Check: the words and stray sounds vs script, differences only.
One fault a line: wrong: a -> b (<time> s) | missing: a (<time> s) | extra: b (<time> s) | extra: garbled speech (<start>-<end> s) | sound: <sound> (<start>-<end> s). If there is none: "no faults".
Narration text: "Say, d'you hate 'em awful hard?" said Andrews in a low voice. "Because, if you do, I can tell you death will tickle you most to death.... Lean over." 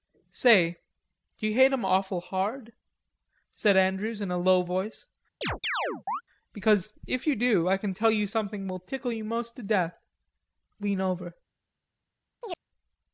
sound: chirp (5.4-6.2 s)
wrong: death -> something (8.3 s)
sound: chirp (12.4-12.6 s)